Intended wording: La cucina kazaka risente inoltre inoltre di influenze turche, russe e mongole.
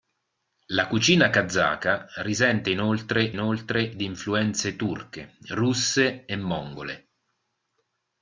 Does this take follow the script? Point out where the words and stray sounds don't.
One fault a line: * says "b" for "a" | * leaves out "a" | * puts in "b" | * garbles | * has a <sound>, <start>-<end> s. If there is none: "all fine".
all fine